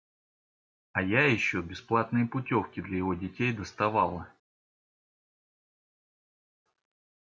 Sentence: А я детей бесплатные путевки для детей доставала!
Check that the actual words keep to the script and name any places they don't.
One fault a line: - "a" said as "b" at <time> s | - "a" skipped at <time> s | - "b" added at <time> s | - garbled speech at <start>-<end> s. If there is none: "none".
- "детей" said as "еще" at 1.3 s
- "его" added at 3.0 s